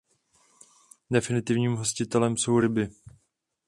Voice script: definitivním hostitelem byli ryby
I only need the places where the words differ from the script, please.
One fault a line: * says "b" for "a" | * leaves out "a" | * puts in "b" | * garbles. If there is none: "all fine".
* says "jsou" for "byli"